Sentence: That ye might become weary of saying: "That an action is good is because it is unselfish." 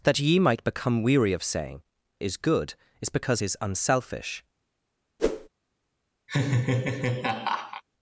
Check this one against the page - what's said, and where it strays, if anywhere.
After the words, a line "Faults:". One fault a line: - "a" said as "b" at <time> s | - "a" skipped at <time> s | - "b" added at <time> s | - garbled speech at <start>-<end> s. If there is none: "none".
That ye might become weary of saying: "Is good is because is unselfish."
Faults:
- "That an action" skipped at 1.8 s
- "it" skipped at 3.4 s